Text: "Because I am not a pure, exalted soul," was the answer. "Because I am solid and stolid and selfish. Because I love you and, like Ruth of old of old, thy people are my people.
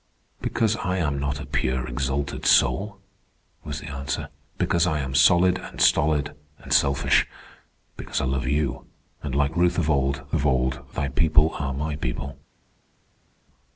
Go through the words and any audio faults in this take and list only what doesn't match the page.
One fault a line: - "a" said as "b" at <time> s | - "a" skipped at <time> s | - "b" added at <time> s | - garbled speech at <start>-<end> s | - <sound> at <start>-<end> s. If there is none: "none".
none